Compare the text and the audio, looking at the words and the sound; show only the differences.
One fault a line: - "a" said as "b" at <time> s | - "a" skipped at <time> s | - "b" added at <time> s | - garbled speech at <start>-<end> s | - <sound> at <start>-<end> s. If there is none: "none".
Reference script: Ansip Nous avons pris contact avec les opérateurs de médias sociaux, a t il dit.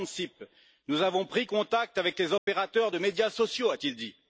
- dropout at 2.4-2.5 s